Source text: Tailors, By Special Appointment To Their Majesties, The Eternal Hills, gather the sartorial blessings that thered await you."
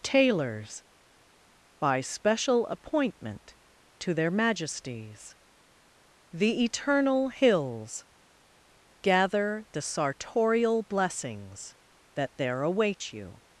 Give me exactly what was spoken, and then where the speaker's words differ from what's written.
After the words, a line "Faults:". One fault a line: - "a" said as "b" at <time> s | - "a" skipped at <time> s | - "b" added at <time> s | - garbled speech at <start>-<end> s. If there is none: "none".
Tailors, By Special Appointment To Their Majesties, The Eternal Hills, gather the sartorial blessings that there await you."
Faults:
- "thered" said as "there" at 12.4 s